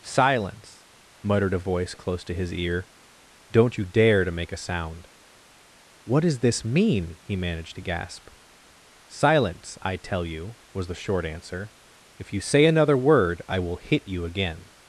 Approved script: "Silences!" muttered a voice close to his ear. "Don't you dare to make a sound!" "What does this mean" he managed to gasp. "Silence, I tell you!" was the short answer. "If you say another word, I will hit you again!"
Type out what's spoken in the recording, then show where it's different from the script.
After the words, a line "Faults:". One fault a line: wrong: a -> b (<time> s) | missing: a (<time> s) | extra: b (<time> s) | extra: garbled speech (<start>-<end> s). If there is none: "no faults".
"Silence!" muttered a voice close to his ear. "Don't you dare to make a sound!" "What does this mean" he managed to gasp. "Silence, I tell you!" was the short answer. "If you say another word, I will hit you again!"
Faults:
wrong: Silences -> Silence (0.0 s)